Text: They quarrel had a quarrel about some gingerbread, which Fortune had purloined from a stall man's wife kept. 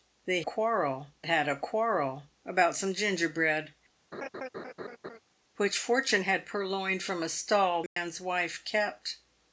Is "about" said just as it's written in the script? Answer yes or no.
yes